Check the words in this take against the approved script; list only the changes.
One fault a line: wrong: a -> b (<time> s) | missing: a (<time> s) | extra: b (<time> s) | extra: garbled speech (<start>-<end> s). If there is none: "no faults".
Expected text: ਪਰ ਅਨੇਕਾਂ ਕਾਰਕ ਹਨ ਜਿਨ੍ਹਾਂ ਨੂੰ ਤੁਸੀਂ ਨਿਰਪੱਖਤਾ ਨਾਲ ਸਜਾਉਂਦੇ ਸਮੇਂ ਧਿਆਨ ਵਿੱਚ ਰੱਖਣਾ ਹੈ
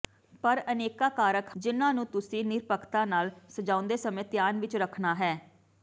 missing: ਹਨ (1.5 s)